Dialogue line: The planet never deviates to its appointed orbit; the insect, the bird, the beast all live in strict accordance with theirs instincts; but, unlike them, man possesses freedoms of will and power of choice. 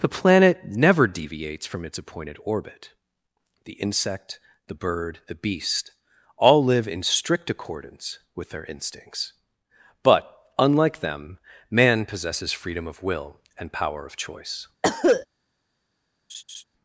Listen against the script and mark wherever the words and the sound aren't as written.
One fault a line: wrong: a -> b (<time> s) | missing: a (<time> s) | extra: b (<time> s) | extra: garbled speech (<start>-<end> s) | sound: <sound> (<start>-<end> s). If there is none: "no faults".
wrong: to -> from (1.7 s)
wrong: theirs -> their (8.5 s)
wrong: freedoms -> freedom (12.5 s)
sound: cough (14.8-15.3 s)
sound: laugh (16.3-16.6 s)